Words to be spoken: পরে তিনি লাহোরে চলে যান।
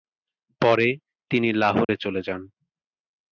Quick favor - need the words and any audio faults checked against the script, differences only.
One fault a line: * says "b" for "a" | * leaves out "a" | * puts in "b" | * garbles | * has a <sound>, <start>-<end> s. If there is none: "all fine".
* has a dropout, 1.8-1.9 s